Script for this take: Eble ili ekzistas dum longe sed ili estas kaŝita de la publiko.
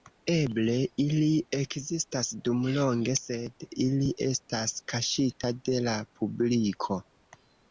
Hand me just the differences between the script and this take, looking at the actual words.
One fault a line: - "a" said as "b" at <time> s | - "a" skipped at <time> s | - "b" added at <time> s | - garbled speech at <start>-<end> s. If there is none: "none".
none